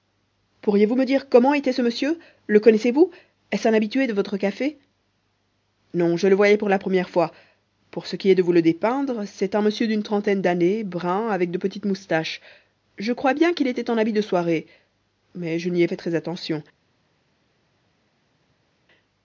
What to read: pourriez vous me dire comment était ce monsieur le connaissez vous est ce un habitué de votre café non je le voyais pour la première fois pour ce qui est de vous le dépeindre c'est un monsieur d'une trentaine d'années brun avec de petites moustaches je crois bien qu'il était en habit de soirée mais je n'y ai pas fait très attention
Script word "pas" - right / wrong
wrong